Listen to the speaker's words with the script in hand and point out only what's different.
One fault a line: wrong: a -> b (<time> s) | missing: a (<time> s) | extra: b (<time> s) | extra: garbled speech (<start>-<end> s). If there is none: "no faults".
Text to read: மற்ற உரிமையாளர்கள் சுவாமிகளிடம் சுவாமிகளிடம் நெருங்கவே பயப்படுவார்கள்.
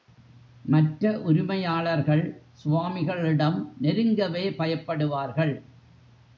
missing: சுவாமிகளிடம் (3.6 s)